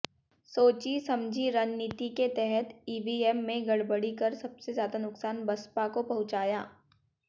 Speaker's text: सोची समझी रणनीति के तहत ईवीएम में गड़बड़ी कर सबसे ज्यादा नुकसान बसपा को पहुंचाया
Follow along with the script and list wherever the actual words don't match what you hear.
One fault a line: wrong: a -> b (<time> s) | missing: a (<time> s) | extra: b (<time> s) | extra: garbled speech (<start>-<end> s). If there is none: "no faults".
no faults